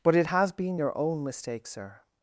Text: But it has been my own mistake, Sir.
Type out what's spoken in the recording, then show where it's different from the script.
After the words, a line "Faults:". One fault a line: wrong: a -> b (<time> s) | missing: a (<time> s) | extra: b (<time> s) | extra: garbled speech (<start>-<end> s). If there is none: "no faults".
But it has been your own mistake, Sir.
Faults:
wrong: my -> your (0.8 s)